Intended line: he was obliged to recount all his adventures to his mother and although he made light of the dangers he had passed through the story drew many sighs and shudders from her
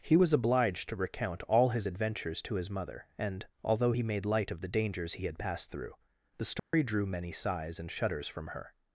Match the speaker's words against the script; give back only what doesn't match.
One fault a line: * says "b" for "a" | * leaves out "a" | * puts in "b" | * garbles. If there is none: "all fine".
all fine